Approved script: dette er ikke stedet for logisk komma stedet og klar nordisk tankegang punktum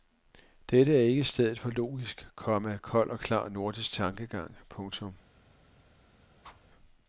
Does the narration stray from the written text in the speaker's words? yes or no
yes